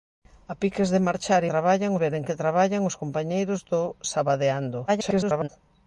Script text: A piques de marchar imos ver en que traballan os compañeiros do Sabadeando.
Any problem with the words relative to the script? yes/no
yes